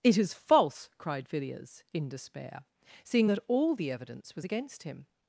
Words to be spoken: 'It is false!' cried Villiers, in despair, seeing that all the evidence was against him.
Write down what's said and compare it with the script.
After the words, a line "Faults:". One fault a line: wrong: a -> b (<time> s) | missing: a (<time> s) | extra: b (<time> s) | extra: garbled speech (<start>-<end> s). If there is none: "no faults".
'It is false!' cried Villiers, in despair, seeing that all the evidence was against him.
Faults:
no faults